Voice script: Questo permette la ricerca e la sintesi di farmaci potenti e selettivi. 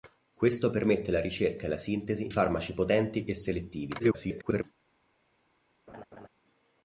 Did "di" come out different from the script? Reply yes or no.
yes